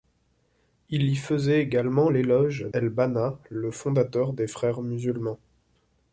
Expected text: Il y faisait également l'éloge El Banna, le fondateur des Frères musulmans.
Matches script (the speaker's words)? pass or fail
pass